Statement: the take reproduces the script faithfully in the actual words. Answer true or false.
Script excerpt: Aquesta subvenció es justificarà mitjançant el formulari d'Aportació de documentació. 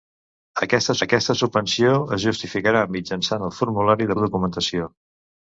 false